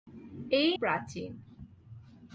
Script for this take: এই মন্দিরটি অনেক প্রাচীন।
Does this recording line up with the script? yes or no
no